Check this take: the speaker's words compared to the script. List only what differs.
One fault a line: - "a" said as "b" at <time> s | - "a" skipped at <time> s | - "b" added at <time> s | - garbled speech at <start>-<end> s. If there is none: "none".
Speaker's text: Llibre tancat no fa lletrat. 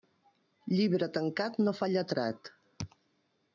none